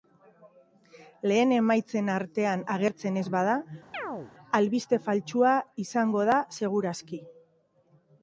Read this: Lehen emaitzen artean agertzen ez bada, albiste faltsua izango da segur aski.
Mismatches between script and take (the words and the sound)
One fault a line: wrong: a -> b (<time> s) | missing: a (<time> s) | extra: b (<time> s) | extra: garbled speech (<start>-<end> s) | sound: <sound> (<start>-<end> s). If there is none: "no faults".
sound: chirp (3.9-4.3 s)